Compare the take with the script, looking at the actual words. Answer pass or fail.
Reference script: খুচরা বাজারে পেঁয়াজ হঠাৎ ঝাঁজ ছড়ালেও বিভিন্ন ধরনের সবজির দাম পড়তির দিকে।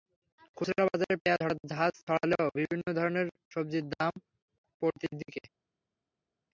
pass